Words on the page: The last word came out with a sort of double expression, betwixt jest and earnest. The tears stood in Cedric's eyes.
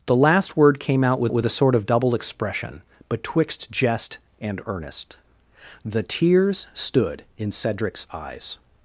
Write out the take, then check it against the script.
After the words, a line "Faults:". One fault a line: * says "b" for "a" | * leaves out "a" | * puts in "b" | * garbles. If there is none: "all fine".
The last word came out with with a sort of double expression, betwixt jest and earnest. The tears stood in Cedric's eyes.
Faults:
* puts in "with"